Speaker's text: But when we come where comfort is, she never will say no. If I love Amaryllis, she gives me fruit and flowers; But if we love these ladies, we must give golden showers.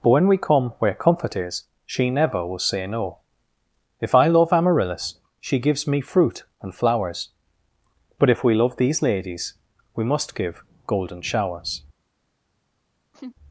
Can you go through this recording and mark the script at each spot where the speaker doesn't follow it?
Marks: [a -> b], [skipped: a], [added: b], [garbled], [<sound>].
But when we come where comfort is, she never will say no. If I love Amaryllis, she gives me fruit and flowers; But if we love these ladies, we must give golden showers. [laugh]